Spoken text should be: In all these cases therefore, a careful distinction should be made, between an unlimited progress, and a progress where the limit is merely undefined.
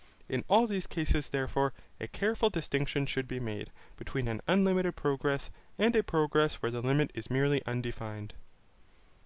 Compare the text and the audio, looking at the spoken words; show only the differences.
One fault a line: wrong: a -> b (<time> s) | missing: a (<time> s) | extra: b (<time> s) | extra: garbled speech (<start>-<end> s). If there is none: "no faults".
no faults